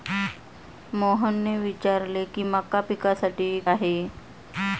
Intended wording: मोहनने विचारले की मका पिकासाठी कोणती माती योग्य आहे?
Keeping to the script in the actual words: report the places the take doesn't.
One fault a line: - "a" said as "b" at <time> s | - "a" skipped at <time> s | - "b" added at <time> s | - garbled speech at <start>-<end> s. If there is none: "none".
- "कोणती माती योग्य" skipped at 3.5 s